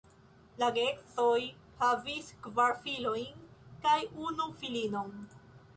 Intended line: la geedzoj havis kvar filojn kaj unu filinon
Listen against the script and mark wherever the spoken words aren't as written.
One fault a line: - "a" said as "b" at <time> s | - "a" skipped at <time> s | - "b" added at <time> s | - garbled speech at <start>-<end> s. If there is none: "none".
none